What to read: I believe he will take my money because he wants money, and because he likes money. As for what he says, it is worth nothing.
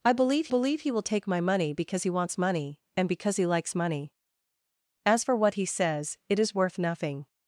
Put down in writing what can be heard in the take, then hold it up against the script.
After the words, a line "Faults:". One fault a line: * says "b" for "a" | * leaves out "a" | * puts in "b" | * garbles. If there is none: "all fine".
I believe believe he will take my money because he wants money, and because he likes money. As for what he says, it is worth nothing.
Faults:
* puts in "believe"